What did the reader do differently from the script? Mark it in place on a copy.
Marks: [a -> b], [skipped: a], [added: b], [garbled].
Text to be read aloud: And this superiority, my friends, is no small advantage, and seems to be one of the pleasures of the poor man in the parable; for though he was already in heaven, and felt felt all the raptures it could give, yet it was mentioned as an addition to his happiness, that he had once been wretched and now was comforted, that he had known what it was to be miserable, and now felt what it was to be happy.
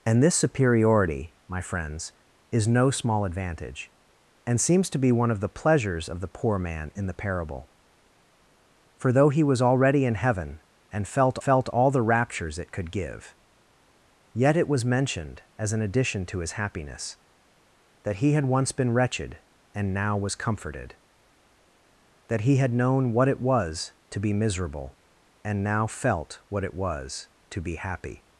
And this superiority, my friends, is no small advantage, and seems to be one of the pleasures of the poor man in the parable; for though he was already in heaven, and felt felt all the raptures it could give, yet it was mentioned as an addition to his happiness, that he had once been wretched and now was comforted, that he had known what it was to be miserable, and now felt what it was to be happy.